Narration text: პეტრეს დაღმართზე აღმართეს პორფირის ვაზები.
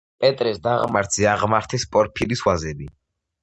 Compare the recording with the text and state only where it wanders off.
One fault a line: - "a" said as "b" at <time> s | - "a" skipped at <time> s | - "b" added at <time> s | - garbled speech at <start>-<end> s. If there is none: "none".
none